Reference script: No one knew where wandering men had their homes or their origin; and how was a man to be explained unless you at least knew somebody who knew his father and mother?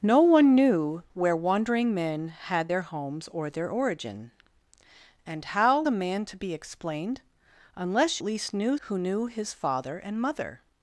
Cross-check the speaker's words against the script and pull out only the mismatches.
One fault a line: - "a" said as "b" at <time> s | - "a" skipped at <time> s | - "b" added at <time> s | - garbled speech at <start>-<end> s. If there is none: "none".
- "was" skipped at 5.8 s
- "you" skipped at 8.2 s
- "somebody" skipped at 8.8 s